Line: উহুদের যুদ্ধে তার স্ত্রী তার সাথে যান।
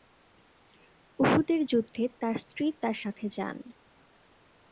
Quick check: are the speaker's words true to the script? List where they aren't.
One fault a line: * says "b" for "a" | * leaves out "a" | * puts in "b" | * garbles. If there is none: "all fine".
all fine